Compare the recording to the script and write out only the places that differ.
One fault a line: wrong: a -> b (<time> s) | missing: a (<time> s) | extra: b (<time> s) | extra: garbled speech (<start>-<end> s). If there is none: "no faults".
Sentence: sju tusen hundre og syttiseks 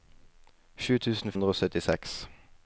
no faults